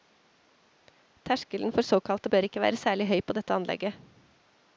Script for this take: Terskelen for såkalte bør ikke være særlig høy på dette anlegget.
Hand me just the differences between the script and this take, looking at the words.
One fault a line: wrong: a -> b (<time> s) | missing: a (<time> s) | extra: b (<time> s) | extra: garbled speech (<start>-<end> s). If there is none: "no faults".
no faults